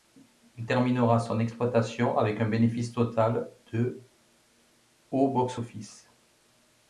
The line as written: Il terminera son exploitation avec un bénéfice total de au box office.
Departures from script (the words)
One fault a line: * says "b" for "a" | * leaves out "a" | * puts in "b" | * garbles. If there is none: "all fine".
all fine